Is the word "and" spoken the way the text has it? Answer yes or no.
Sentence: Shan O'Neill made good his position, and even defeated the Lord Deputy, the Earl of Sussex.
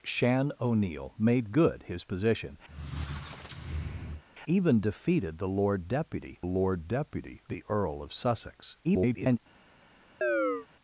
no